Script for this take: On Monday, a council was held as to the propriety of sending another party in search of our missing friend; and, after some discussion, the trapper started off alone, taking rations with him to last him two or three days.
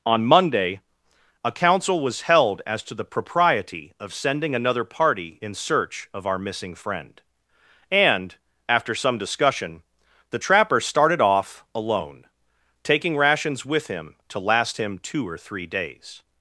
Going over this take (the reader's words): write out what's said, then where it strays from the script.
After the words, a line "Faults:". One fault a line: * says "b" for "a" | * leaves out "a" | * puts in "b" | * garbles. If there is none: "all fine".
On Monday, a council was held as to the propriety of sending another party in search of our missing friend; and, after some discussion, the trapper started off alone, taking rations with him to last him two or three days.
Faults:
all fine